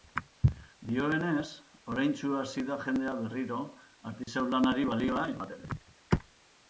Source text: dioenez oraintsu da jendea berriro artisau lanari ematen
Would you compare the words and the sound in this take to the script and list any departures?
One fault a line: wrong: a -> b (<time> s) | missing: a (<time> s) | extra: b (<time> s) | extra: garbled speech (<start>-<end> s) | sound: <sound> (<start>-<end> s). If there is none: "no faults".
extra: hasi (2.4 s)
sound: dropout (4.2-4.3 s)
extra: balioa (4.9 s)